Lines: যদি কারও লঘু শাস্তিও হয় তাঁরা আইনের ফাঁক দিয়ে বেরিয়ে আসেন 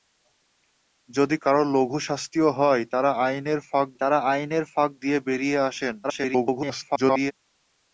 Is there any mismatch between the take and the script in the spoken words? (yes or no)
yes